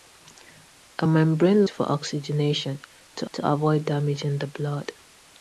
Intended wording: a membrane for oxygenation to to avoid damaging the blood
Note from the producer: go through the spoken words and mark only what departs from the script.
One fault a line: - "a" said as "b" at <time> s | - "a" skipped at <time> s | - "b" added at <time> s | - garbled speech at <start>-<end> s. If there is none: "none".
none